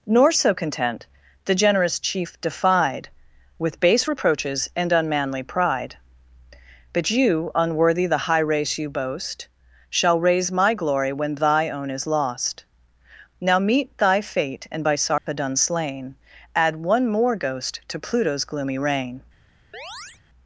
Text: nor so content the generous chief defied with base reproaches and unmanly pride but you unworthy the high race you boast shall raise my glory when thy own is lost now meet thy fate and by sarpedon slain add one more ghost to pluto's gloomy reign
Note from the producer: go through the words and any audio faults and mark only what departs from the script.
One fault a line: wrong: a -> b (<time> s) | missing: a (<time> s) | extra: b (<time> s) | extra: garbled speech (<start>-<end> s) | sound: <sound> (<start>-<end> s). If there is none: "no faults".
sound: dropout (15.2-15.3 s)
sound: chirp (19.7-20.2 s)